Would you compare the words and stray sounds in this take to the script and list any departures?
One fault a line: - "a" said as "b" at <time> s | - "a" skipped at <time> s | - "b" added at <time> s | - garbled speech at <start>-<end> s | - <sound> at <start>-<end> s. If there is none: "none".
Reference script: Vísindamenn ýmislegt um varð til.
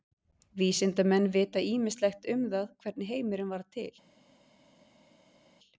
- "vita" added at 1.4 s
- "það hvernig heimurinn" added at 2.5 s